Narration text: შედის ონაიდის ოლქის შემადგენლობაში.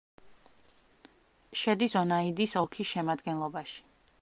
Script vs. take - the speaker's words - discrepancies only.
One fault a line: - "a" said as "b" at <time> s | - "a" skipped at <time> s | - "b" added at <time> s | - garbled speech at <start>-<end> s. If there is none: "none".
none